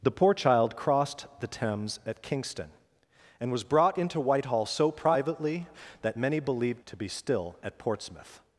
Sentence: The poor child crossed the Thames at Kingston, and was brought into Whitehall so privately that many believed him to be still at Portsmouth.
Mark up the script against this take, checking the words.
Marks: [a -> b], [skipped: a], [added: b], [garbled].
The poor child crossed the Thames at Kingston, and was brought into Whitehall so privately that many believed [skipped: him] to be still at Portsmouth.